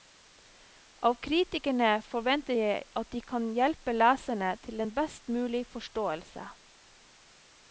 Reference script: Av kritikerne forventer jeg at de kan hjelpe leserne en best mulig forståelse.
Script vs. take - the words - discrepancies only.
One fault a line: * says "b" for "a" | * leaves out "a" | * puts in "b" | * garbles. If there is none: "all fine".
* puts in "til"